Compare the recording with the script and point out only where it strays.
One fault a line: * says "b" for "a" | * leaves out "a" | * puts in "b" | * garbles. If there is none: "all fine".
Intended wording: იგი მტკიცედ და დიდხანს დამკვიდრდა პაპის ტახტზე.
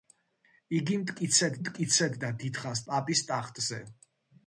* puts in "მტკიცედ"
* leaves out "დამკვიდრდა"